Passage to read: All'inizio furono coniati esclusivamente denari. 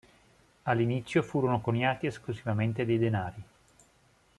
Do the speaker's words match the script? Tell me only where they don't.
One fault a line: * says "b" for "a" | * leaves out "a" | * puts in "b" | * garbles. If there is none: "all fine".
* puts in "dei"